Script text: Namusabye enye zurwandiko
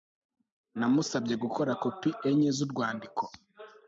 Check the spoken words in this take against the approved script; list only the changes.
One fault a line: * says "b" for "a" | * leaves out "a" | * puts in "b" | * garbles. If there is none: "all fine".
* puts in "gukora kopi"